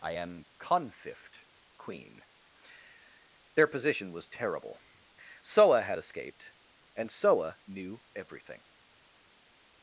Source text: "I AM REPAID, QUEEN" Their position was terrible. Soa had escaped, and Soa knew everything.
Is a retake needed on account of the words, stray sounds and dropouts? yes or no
yes